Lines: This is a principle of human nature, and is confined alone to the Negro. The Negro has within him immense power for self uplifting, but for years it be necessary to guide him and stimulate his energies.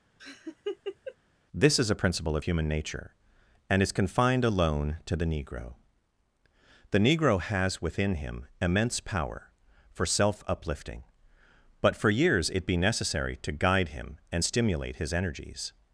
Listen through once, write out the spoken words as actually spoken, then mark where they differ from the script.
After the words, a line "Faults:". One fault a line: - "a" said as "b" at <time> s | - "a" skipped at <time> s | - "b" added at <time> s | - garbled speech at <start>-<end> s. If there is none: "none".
This is a principle of human nature, and is confined alone to the Negro. The Negro has within him immense power for self uplifting, but for years it be necessary to guide him and stimulate his energies.
Faults:
none